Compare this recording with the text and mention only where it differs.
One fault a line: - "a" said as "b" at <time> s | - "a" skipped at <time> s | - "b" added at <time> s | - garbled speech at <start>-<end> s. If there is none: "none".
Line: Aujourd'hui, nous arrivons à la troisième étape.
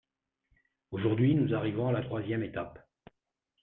none